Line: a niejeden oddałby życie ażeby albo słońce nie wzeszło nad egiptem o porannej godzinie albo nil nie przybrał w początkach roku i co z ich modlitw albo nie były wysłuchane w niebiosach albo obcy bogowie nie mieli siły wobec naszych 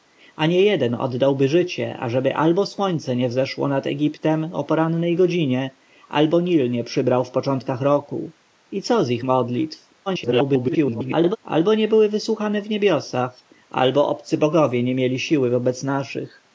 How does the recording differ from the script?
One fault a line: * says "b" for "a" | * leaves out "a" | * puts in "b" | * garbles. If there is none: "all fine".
* garbles